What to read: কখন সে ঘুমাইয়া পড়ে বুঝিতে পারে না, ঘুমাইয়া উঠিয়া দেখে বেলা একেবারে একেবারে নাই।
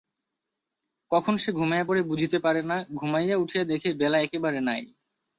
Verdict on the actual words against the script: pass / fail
fail